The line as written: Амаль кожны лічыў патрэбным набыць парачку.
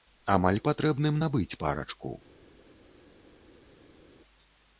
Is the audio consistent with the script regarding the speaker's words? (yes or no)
no